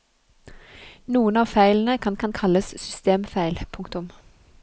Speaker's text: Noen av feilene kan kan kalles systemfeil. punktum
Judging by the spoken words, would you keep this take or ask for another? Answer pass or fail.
pass